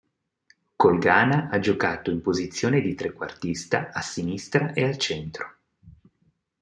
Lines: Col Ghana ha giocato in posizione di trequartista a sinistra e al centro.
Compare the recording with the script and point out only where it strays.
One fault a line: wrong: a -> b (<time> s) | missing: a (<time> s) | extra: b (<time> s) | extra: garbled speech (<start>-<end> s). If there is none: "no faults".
no faults